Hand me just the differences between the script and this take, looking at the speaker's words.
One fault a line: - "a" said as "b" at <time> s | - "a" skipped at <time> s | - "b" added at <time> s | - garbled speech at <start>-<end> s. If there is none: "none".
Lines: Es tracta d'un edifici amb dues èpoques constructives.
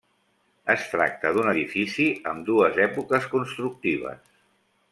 none